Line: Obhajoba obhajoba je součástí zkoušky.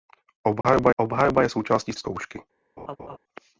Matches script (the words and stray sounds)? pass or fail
fail